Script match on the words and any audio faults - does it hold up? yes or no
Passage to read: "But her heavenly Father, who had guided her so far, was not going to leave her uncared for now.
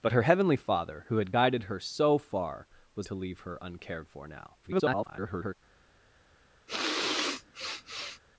no